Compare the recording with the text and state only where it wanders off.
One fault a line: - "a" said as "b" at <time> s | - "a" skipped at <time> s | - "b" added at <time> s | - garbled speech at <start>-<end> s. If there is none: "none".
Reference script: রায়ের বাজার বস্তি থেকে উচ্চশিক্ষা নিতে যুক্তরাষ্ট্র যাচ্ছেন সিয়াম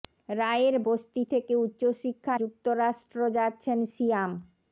- "বাজার" skipped at 0.8 s
- "নিতে" skipped at 2.3 s